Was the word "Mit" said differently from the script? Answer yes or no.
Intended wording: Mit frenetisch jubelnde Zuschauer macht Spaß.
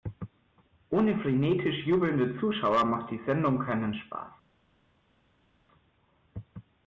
yes